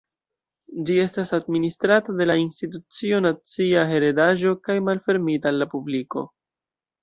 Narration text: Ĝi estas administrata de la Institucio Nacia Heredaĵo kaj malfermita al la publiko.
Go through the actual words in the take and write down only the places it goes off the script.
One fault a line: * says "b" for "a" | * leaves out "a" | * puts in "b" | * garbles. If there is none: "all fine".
all fine